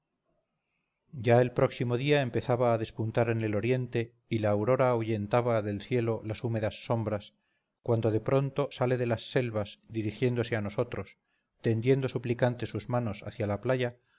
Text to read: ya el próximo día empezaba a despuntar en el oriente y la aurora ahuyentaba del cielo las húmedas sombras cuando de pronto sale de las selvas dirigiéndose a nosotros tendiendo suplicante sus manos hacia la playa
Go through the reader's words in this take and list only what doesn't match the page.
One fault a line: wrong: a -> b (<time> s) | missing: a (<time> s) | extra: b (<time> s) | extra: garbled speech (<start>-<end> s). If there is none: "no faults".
no faults